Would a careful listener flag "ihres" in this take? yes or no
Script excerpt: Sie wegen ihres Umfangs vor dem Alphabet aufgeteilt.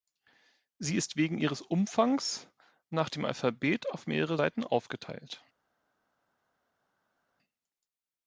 no